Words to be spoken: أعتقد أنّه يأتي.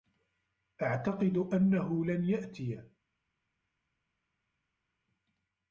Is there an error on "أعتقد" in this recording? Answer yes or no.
no